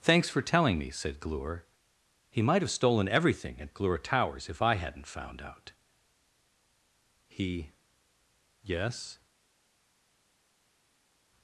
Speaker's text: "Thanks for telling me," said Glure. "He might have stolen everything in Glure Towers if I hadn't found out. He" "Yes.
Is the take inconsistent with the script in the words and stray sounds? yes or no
yes